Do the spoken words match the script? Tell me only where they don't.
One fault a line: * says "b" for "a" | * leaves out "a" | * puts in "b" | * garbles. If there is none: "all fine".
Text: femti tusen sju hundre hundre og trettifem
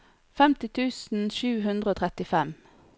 * leaves out "hundre"